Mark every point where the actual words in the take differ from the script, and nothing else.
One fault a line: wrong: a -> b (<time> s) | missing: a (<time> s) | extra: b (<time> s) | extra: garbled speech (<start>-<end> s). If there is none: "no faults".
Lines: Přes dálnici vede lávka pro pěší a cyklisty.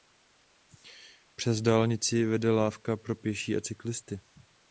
no faults